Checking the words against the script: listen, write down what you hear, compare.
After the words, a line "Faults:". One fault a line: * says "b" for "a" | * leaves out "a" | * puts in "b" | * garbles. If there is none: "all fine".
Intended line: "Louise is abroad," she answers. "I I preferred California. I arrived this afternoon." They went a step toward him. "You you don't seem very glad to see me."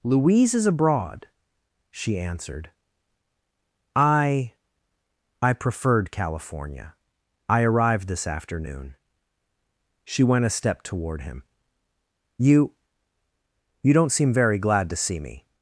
"Louise is abroad," she answered. "I I preferred California. I arrived this afternoon." She went a step toward him. "You you don't seem very glad to see me."
Faults:
* says "answered" for "answers"
* says "She" for "They"